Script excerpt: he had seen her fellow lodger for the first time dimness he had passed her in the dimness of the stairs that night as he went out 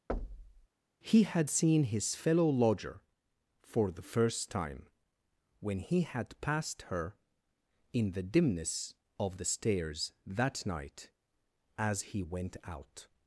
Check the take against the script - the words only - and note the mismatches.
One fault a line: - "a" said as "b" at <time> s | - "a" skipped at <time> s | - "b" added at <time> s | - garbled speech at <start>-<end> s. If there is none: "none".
- "her" said as "his" at 1.8 s
- "dimness" said as "when" at 5.6 s